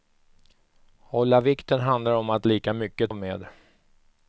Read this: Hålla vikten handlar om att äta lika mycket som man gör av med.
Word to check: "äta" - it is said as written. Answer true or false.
false